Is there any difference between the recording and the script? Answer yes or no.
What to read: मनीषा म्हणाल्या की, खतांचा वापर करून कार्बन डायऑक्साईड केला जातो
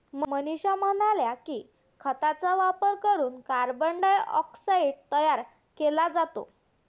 yes